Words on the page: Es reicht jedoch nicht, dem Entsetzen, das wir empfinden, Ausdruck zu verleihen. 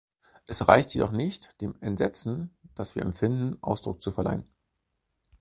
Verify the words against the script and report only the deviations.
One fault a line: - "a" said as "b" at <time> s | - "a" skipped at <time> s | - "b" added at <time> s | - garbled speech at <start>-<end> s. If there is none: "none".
none